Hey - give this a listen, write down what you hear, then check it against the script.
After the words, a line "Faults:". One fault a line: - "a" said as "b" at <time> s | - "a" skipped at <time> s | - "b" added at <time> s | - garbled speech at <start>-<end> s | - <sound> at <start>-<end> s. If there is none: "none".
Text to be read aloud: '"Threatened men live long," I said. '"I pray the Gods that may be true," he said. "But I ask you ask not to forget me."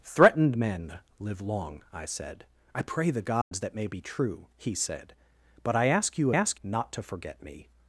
'"Threatened men live long," I said. '"I pray the Gods that may be true," he said. "But I ask you ask not to forget me."
Faults:
- dropout at 3.4-3.5 s